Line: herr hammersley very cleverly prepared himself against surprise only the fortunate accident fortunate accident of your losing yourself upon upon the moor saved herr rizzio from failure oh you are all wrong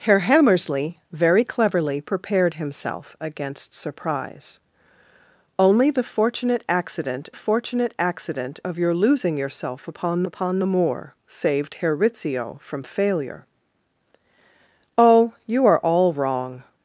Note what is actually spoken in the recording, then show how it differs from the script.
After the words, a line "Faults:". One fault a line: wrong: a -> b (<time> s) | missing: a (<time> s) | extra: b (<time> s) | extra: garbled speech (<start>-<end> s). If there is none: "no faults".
herr hammersley very cleverly prepared himself against surprise only the fortunate accident fortunate accident of your losing yourself upon upon the moor saved herr rizzio from failure oh you are all wrong
Faults:
no faults